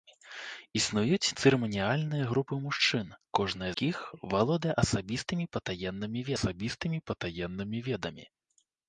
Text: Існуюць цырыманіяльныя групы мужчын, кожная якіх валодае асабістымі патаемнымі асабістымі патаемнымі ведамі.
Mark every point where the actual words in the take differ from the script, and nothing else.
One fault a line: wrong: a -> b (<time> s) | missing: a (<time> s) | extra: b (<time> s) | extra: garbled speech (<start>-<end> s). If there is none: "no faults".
no faults